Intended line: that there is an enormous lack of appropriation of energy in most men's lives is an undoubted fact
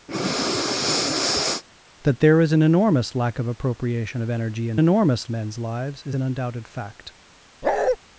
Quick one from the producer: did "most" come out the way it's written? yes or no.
no